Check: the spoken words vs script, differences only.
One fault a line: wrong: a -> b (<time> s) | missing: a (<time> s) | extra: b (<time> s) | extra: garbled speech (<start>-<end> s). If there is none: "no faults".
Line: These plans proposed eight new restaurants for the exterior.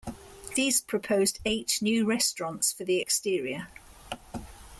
missing: plans (0.8 s)